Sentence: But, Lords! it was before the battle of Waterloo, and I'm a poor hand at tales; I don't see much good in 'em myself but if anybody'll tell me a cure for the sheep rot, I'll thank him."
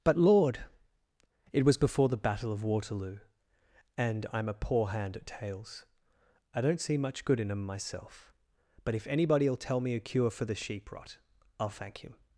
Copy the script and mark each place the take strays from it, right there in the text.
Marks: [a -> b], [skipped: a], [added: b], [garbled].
But, [Lords! -> Lord] it was before the battle of Waterloo, and I'm a poor hand at tales; I don't see much good in 'em myself but if anybody'll tell me a cure for the sheep rot, I'll thank him."